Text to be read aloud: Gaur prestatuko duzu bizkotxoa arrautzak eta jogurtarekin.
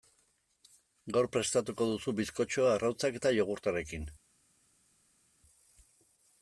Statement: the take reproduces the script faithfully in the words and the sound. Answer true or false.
true